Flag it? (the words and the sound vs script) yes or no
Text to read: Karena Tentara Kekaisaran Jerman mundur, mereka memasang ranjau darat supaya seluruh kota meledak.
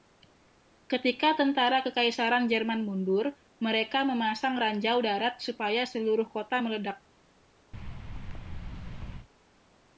yes